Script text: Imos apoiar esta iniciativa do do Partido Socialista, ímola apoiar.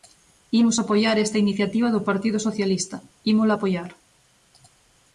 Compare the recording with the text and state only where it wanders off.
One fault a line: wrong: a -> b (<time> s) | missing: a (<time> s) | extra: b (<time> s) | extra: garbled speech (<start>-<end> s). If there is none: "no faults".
missing: do (2.1 s)